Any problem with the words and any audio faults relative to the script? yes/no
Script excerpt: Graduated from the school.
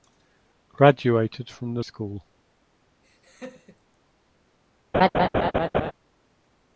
yes